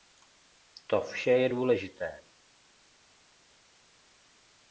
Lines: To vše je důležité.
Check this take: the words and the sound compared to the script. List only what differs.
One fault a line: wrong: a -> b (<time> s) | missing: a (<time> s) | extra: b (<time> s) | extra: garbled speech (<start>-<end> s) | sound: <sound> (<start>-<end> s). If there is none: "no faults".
no faults